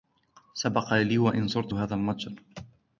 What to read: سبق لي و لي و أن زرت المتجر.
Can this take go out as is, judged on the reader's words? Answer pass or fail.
fail